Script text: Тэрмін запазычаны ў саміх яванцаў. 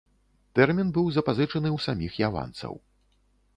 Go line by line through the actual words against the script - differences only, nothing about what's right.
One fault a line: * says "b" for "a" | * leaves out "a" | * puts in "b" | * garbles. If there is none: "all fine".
* puts in "быў"